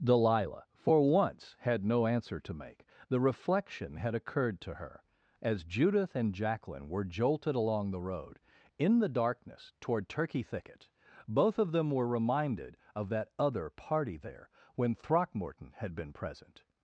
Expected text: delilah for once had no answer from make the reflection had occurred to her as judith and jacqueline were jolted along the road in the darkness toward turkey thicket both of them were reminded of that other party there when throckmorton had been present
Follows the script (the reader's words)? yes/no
no